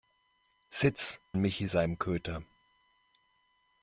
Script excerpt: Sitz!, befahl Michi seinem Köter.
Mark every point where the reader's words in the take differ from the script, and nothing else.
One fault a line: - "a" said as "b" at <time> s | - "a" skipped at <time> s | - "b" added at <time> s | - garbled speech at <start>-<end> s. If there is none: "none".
- "befahl" skipped at 1.2 s